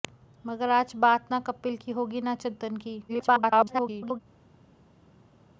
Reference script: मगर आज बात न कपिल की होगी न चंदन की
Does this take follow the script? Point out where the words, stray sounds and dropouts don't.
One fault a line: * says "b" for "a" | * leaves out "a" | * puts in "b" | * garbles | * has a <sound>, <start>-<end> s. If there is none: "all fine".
* garbles